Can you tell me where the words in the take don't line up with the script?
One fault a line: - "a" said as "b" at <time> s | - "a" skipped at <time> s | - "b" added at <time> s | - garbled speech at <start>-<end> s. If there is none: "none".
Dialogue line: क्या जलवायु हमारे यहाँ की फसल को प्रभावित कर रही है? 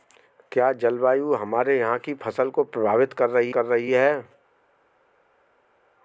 - "कर रही" added at 3.5 s